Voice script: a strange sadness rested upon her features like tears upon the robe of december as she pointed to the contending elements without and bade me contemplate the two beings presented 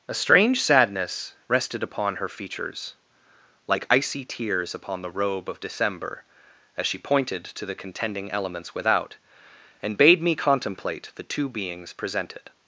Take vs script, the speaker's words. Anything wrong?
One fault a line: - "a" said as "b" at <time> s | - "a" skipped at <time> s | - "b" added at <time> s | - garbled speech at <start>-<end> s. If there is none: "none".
- "icy" added at 3.9 s